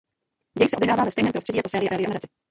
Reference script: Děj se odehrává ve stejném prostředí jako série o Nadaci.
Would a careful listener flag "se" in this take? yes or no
no